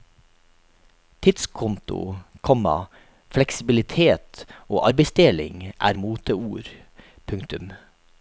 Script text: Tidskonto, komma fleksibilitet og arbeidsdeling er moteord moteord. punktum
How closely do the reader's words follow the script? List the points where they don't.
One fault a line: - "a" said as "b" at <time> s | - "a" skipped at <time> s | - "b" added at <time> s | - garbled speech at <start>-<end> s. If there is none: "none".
- "moteord" skipped at 6.7 s